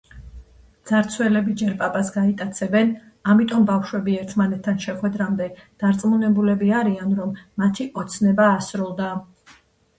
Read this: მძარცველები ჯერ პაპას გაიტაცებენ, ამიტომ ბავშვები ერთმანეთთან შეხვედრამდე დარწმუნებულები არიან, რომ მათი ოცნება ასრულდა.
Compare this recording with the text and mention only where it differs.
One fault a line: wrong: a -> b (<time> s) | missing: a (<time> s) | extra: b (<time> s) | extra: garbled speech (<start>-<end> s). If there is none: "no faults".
no faults